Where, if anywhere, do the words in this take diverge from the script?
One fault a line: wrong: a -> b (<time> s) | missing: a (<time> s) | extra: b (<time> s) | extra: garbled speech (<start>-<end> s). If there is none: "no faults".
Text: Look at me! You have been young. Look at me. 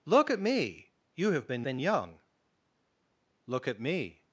extra: been (1.6 s)